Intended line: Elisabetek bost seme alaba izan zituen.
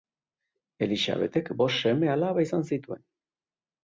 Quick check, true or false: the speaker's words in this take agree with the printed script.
true